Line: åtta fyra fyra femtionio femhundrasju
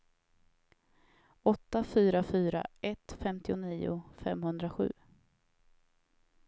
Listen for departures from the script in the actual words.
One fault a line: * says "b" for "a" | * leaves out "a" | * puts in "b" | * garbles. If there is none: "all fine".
* puts in "ett"